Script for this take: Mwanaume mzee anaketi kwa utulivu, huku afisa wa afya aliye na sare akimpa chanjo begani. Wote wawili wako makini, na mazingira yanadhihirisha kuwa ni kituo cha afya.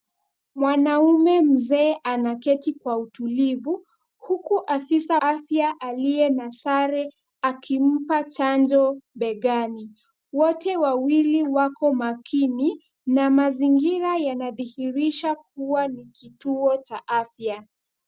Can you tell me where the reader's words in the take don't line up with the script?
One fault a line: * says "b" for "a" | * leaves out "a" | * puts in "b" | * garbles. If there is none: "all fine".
* leaves out "wa"